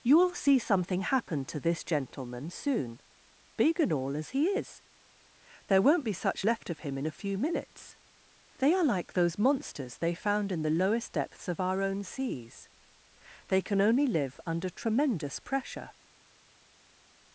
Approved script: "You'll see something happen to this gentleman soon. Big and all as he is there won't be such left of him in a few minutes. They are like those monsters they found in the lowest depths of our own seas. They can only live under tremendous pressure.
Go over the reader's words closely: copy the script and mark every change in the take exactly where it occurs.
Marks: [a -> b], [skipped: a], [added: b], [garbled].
"You'll see something happen to this gentleman soon. Big and all as he is there won't be such left of him in a few minutes. They are like those monsters they found in the lowest depths of our own seas. They can only live under tremendous pressure.